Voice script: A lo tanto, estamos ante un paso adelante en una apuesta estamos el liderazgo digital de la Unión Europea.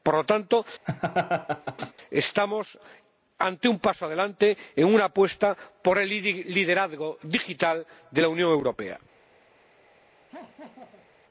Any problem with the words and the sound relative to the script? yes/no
yes